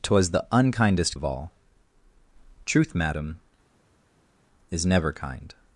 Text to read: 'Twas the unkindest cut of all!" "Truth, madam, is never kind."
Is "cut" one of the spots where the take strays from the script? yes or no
yes